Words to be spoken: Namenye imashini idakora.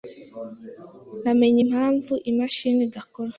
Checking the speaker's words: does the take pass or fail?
fail